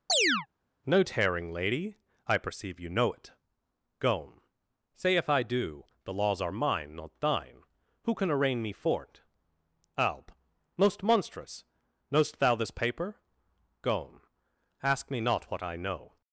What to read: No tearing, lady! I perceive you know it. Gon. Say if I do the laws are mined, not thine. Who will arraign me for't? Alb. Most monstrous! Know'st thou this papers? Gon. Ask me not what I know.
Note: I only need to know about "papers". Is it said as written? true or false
false